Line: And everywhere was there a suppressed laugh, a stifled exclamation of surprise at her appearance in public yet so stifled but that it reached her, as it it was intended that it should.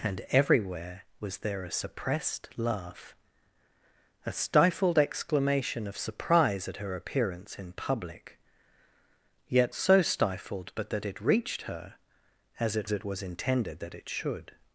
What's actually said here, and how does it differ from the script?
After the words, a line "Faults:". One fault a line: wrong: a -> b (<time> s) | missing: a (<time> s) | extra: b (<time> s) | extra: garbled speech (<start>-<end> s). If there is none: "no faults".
And everywhere was there a suppressed laugh, a stifled exclamation of surprise at her appearance in public yet so stifled but that it reached her, as it it was intended that it should.
Faults:
no faults